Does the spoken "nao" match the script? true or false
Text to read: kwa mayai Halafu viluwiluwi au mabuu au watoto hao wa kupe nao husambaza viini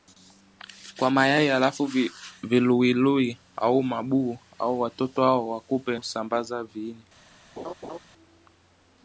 false